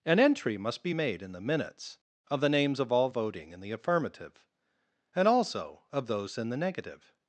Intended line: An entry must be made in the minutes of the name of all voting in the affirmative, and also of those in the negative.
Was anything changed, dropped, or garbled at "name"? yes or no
yes